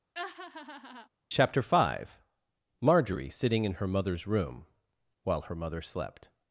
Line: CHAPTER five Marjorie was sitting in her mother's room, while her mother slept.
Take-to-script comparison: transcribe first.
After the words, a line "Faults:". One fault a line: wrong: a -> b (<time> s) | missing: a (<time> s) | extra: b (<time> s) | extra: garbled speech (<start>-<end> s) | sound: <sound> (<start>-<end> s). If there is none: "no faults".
CHAPTER five Marjorie sitting in her mother's room, while her mother slept.
Faults:
sound: laugh (0.1-1.1 s)
missing: was (3.3 s)